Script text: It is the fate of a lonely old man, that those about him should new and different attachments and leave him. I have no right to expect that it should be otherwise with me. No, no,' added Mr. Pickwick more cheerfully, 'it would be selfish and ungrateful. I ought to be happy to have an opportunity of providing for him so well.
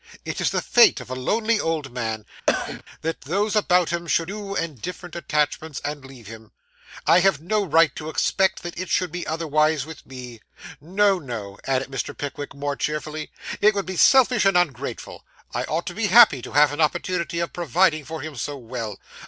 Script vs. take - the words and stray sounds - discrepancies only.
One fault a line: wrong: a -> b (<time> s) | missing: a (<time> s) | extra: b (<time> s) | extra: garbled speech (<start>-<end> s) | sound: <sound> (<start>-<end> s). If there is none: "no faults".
sound: cough (2.5-2.8 s)